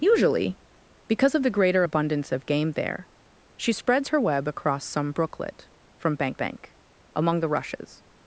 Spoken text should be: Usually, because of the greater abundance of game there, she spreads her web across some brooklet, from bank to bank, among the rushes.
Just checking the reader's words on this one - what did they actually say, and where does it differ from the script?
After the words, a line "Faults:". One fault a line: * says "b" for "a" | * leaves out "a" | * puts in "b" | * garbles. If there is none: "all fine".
Usually, because of the greater abundance of game there, she spreads her web across some brooklet, from bank bank, among the rushes.
Faults:
* leaves out "to"